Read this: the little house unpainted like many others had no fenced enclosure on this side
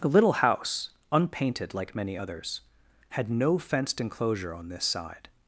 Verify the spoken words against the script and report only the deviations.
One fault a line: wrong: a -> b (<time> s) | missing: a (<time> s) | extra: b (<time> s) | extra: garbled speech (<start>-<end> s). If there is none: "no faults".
no faults